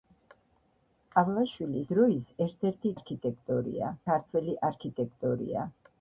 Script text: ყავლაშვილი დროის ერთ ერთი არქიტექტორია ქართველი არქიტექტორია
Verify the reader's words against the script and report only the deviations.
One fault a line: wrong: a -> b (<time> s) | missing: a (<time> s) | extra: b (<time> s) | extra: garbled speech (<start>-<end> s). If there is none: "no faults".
no faults